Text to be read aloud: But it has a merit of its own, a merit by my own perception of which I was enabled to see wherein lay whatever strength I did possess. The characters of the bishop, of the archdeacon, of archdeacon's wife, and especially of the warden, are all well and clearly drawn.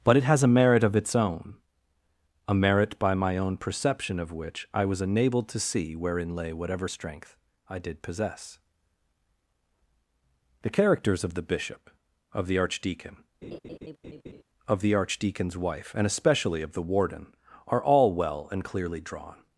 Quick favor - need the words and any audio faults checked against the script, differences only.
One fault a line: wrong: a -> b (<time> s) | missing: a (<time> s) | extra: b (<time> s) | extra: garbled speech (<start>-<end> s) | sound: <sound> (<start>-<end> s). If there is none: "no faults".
sound: laugh (13.4-14.4 s)
extra: the (14.8 s)